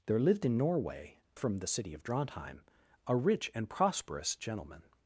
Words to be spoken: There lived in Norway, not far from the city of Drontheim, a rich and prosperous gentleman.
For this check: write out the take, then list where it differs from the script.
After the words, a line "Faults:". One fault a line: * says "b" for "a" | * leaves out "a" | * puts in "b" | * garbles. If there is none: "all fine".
There lived in Norway, from the city of Drontheim, a rich and prosperous gentleman.
Faults:
* leaves out "not far"